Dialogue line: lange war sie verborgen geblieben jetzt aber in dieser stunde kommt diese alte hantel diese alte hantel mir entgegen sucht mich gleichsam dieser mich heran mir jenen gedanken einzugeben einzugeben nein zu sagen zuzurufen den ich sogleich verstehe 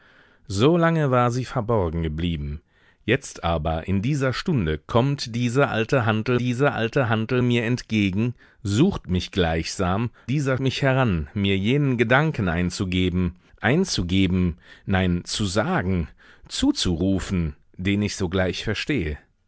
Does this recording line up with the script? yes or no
yes